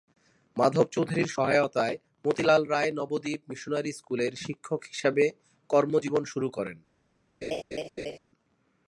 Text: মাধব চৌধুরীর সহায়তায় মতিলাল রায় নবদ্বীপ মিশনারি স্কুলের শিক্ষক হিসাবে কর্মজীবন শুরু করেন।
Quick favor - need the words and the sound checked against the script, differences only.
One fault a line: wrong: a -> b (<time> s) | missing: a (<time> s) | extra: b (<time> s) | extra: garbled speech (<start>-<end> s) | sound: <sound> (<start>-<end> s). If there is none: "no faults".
sound: laugh (7.4-8.2 s)